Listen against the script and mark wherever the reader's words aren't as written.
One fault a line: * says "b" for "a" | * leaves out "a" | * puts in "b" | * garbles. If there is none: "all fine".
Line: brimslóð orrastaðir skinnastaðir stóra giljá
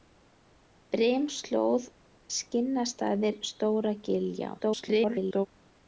* leaves out "orrastaðir"
* garbles